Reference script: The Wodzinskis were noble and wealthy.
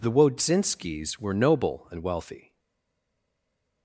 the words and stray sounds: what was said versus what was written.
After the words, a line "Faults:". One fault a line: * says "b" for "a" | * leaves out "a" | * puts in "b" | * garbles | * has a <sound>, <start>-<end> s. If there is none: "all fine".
The Wodzinskis were noble and wealthy.
Faults:
all fine